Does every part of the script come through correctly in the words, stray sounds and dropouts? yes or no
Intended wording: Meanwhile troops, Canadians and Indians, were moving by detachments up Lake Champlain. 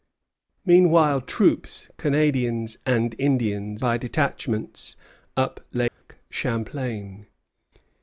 no